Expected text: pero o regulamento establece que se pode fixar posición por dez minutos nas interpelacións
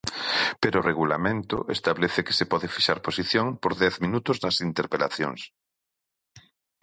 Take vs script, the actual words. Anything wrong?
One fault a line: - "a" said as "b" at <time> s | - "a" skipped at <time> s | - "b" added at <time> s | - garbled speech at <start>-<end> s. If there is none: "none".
none